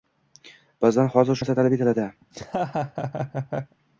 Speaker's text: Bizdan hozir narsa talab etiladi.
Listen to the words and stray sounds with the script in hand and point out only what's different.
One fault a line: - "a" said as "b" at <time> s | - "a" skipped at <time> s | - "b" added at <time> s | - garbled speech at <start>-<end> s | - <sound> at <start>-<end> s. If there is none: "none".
- laugh at 2.2-3.8 s